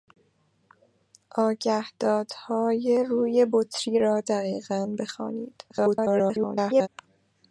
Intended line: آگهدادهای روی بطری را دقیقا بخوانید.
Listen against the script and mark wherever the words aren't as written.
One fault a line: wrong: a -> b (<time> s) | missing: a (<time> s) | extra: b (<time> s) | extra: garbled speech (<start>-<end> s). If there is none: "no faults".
extra: garbled speech (5.7-6.9 s)